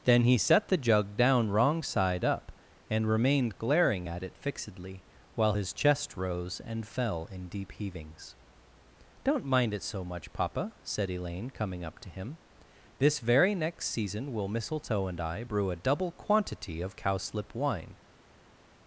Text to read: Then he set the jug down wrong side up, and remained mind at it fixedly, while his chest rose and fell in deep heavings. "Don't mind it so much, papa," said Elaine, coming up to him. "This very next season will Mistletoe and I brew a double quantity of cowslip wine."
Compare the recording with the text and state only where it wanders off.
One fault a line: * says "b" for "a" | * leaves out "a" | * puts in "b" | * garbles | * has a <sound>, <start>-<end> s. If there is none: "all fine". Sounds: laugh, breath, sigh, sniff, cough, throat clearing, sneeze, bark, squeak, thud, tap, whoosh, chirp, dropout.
* says "glaring" for "mind"